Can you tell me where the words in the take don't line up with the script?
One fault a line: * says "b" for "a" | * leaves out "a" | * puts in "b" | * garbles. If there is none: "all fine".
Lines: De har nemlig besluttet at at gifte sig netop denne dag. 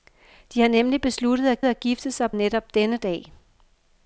all fine